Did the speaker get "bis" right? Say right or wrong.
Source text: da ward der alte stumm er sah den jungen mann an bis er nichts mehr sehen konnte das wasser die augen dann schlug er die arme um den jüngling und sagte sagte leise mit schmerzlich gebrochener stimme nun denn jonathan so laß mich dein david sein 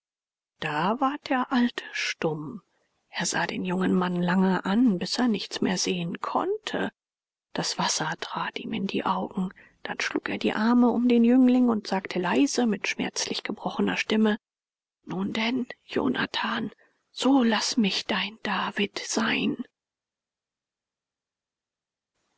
right